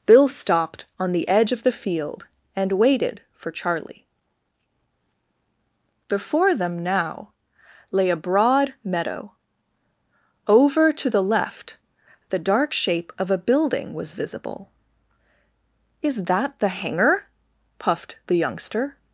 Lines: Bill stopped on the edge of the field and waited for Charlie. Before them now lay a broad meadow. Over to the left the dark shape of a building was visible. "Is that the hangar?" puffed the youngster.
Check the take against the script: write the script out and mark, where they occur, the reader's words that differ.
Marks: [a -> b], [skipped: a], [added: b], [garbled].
Bill stopped on the edge of the field and waited for Charlie. Before them now lay a broad meadow. Over to the left the dark shape of a building was visible. "Is that the hangar?" puffed the youngster.